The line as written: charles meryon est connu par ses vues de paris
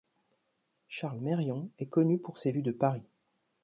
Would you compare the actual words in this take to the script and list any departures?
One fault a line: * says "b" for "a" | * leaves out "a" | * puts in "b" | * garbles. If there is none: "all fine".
* says "pour" for "par"